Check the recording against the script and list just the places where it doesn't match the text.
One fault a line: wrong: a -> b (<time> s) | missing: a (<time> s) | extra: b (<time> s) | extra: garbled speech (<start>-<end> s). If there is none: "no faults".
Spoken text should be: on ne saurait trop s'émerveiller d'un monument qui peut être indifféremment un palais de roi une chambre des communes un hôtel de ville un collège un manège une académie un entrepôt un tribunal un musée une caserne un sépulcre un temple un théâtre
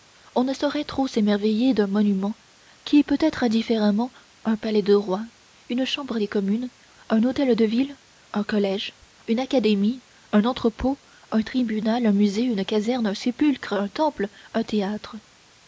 missing: un manège (9.0 s)